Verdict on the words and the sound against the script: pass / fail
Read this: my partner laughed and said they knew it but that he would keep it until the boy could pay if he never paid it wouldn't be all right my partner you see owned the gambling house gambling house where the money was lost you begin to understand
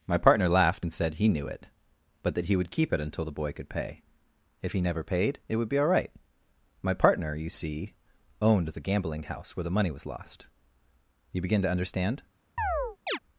fail